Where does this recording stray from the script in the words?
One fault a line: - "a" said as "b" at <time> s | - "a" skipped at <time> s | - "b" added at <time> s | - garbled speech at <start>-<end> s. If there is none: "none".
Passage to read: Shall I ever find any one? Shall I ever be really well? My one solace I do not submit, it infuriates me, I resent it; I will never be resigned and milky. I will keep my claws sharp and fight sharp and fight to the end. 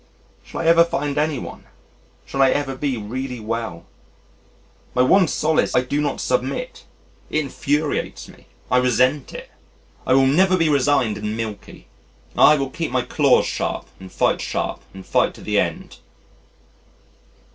none